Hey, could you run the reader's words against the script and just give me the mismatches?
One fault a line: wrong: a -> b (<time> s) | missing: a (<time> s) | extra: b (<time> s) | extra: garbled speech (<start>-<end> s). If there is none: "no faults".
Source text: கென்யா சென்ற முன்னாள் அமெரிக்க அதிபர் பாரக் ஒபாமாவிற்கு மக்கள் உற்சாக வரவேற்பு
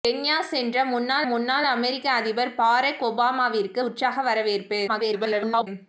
extra: முன்னாள் (1.2 s)
missing: மக்கள் (3.8 s)
extra: garbled speech (4.9-5.7 s)